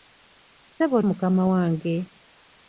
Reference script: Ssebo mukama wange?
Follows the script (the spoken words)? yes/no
yes